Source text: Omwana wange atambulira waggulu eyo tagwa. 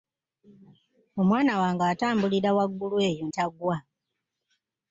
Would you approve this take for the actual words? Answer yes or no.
yes